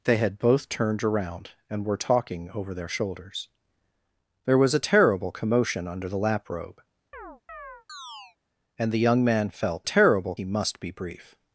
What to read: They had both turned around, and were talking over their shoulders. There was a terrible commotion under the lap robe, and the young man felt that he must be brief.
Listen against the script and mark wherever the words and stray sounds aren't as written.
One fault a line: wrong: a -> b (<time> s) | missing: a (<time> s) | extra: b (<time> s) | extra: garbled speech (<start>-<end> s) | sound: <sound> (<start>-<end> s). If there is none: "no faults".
sound: chirp (7.1-8.4 s)
wrong: that -> terrible (9.8 s)